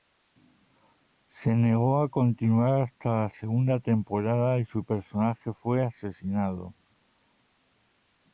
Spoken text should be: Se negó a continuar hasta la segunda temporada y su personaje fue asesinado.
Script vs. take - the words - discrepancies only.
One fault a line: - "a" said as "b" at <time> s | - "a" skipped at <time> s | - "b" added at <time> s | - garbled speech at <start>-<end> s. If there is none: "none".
none